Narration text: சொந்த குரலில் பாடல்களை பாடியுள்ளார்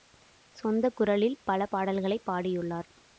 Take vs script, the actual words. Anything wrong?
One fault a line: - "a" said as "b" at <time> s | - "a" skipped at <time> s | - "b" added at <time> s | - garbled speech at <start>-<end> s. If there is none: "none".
- "பல" added at 1.4 s